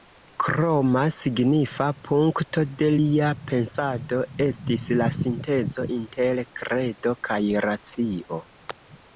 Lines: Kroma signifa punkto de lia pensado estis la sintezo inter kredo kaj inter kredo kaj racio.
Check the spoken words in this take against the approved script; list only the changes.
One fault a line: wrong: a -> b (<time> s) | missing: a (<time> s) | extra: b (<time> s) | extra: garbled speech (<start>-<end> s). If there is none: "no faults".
missing: inter kredo kaj (7.4 s)